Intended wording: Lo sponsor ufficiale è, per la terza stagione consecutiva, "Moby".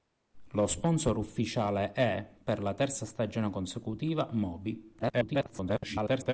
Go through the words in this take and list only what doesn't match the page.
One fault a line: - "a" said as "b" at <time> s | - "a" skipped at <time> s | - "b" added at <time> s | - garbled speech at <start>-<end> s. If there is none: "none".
- garbled speech at 5.0-6.3 s